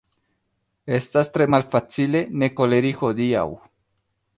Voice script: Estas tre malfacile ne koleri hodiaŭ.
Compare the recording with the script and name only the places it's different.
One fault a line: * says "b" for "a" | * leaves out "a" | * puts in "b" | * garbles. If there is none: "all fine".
all fine